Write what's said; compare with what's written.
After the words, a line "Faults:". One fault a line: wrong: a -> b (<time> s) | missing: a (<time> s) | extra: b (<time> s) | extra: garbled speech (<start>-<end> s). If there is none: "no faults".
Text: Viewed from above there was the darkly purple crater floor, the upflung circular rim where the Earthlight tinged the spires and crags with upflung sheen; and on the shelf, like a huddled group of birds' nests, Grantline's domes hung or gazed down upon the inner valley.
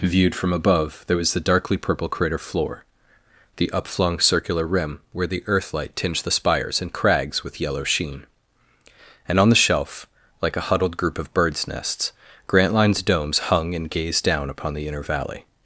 Viewed from above there was the darkly purple crater floor, the upflung circular rim where the Earthlight tinged the spires and crags with yellow sheen; and on the shelf, like a huddled group of birds' nests, Grantline's domes hung and gazed down upon the inner valley.
Faults:
wrong: upflung -> yellow (7.6 s)
wrong: or -> and (13.8 s)